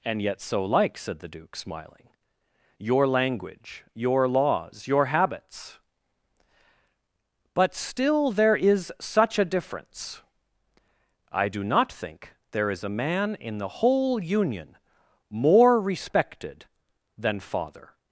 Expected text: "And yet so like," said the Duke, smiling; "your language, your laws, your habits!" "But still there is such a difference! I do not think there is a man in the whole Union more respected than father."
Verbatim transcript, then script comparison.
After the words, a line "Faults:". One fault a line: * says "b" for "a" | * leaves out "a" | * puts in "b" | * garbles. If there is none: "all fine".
"And yet so like," said the Duke, smiling; "your language, your laws, your habits!" "But still there is such a difference! I do not think there is a man in the whole Union more respected than father."
Faults:
all fine